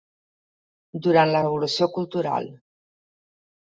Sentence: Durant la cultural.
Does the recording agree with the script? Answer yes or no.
no